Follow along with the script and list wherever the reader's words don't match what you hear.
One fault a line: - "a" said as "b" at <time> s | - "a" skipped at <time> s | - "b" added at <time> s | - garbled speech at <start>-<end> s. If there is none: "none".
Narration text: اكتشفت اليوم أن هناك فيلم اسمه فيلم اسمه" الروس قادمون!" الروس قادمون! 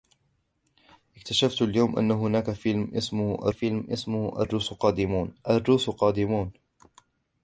none